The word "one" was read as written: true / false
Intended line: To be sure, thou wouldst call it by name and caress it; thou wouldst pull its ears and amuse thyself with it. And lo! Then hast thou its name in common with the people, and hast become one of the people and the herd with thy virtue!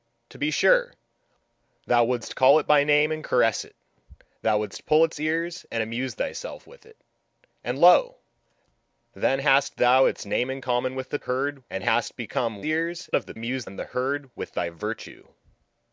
false